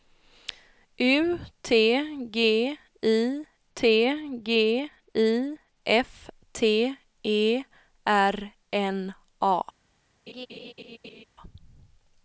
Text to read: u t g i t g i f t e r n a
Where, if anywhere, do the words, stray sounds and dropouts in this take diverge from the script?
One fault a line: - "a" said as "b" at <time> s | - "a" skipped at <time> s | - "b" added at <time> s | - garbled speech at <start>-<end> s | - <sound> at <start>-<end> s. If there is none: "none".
- laugh at 10.3-11.2 s